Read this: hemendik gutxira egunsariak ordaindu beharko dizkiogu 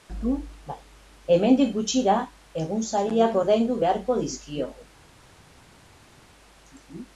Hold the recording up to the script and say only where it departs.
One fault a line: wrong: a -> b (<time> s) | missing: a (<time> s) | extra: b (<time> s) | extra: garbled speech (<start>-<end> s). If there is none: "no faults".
no faults